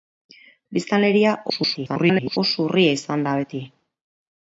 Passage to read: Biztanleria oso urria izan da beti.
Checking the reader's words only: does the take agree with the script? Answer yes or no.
no